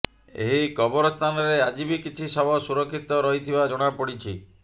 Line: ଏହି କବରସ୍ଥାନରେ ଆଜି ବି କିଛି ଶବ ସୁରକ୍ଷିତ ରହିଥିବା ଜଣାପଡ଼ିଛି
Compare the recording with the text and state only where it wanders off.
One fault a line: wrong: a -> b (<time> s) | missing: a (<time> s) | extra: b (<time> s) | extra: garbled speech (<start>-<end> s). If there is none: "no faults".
no faults